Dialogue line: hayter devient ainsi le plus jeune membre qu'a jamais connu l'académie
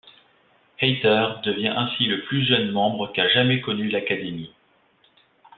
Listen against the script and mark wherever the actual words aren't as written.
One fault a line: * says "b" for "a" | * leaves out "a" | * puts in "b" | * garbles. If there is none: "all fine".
all fine